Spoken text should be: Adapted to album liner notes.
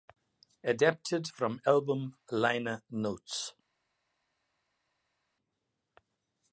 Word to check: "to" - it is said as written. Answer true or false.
false